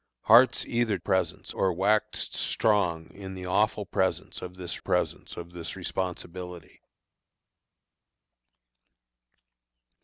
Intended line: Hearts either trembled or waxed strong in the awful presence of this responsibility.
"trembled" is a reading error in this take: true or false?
true